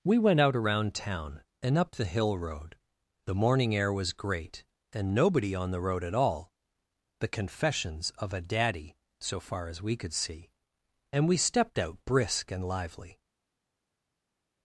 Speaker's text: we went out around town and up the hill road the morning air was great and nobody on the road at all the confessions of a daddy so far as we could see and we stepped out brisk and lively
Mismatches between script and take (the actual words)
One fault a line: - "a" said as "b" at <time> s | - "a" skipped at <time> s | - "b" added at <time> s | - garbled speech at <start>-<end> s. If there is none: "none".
none